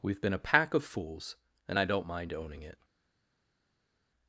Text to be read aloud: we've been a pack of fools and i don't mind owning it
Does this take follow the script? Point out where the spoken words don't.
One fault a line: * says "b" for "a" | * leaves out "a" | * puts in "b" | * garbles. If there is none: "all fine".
all fine